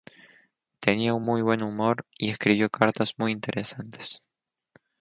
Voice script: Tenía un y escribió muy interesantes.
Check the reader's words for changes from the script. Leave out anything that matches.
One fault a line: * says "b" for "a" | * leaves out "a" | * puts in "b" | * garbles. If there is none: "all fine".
* puts in "muy buen humor"
* puts in "cartas"